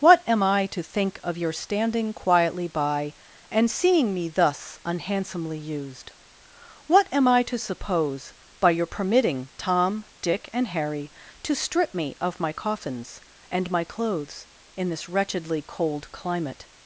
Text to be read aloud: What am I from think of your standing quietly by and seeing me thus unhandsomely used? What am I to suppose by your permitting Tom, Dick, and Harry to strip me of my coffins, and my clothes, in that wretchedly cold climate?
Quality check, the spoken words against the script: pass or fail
fail